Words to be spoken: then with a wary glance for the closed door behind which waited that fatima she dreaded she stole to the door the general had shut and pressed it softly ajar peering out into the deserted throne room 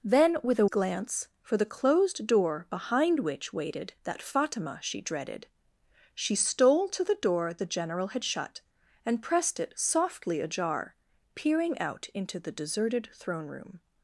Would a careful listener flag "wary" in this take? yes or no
yes